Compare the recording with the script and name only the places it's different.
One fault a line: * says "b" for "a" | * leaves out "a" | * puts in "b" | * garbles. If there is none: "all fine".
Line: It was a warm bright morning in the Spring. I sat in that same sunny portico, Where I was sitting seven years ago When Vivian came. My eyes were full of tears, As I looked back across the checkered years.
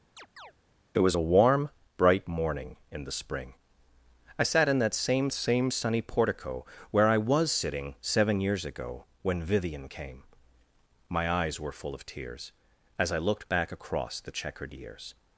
* puts in "same"